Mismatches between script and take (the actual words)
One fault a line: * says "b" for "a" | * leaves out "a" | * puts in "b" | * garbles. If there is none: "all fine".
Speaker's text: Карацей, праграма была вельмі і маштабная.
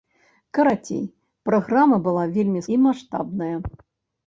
all fine